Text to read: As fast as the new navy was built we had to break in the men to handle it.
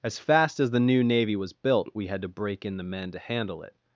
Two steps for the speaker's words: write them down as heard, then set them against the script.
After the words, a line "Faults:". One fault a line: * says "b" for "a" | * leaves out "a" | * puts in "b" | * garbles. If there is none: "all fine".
As fast as the new navy was built we had to break in the men to handle it.
Faults:
all fine